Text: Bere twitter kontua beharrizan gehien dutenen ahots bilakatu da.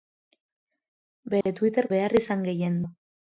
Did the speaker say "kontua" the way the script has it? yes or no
no